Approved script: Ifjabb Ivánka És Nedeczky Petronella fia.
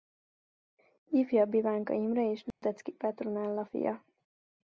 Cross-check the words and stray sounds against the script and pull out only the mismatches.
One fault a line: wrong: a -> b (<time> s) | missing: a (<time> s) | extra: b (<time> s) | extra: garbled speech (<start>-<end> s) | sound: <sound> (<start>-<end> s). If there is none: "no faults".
extra: Imre (1.9 s)
sound: dropout (2.5-2.6 s)